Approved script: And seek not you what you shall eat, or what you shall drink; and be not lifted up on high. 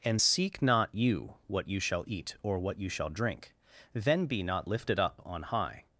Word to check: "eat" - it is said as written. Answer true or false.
true